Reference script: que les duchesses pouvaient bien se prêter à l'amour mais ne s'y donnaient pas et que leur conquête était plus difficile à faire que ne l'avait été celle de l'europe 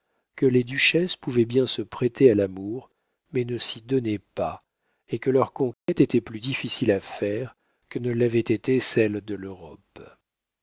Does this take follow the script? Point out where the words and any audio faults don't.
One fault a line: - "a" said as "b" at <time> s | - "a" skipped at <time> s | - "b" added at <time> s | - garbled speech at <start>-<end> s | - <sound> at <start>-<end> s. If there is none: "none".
- dropout at 5.7-5.9 s